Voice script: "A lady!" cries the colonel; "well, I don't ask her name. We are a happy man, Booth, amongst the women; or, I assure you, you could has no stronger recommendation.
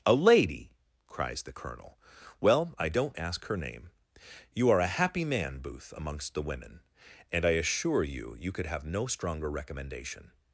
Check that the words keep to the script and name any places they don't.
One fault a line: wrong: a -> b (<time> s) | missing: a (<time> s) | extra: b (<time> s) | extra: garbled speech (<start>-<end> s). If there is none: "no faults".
wrong: We -> You (4.5 s)
wrong: or -> and (7.3 s)
wrong: has -> have (8.7 s)